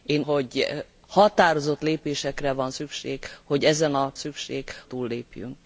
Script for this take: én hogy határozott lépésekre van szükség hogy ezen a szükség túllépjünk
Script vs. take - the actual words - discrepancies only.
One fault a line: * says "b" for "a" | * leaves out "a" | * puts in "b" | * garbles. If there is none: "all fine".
all fine